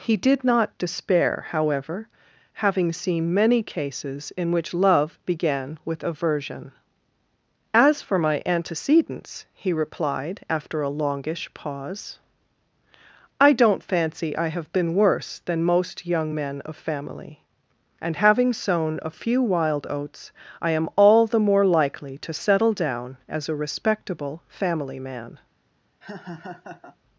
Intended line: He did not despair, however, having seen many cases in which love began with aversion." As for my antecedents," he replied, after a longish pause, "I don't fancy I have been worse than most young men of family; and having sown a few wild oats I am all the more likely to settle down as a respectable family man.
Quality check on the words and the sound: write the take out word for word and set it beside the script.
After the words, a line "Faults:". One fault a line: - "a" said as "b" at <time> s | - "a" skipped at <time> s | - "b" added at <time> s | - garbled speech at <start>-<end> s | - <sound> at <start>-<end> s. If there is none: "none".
He did not despair, however, having seen many cases in which love began with aversion." As for my antecedents," he replied, after a longish pause, "I don't fancy I have been worse than most young men of family; and having sown a few wild oats I am all the more likely to settle down as a respectable family man.
Faults:
- laugh at 26.0-27.0 s